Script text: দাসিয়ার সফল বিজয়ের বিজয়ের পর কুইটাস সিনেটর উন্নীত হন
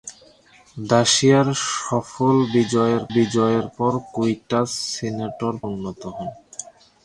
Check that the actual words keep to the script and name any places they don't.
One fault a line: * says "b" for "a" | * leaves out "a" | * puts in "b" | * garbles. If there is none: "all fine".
all fine